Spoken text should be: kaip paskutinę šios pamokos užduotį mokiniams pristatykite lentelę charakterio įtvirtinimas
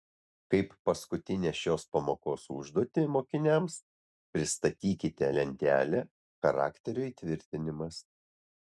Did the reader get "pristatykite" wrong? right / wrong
right